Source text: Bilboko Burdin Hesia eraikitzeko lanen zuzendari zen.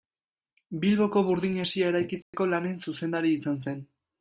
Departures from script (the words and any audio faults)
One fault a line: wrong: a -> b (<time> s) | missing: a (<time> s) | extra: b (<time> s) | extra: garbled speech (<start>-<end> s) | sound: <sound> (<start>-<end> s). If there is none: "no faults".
sound: dropout (2.2-2.3 s)
extra: izan (3.4 s)